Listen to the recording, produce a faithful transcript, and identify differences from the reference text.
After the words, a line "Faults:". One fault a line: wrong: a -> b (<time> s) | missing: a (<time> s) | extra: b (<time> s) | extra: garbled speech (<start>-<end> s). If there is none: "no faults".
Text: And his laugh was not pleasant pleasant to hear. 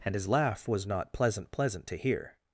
And his laugh was not pleasant pleasant to hear.
Faults:
no faults